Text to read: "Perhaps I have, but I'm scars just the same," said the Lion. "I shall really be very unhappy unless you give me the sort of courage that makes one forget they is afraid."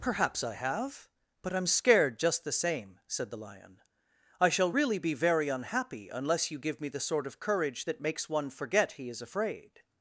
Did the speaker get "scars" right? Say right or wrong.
wrong